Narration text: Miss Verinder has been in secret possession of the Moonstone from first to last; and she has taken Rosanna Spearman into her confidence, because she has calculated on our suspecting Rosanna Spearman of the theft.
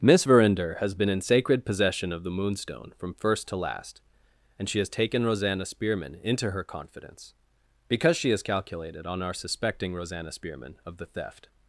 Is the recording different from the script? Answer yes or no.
yes